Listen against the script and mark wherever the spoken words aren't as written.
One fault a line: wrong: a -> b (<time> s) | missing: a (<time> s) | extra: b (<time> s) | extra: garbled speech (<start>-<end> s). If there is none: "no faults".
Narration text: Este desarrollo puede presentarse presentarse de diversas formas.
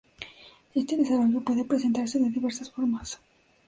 missing: presentarse (2.2 s)